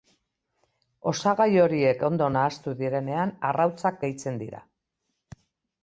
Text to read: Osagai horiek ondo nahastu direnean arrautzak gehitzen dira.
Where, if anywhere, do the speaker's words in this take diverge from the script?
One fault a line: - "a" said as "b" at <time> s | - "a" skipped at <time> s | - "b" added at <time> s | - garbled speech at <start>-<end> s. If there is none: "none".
none